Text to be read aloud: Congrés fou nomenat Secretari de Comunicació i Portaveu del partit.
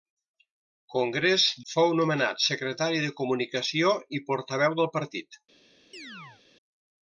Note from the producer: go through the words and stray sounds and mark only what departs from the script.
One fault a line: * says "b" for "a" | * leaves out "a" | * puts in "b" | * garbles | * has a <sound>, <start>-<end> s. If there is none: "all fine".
* has a chirp, 5.9-6.4 s